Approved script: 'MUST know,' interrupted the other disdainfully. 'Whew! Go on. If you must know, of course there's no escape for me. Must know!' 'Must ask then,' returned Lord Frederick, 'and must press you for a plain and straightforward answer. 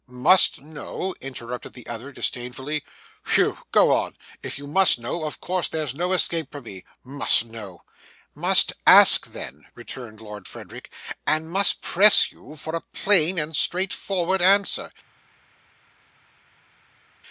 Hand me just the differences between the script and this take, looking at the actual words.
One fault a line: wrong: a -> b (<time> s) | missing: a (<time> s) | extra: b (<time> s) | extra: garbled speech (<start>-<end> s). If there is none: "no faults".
no faults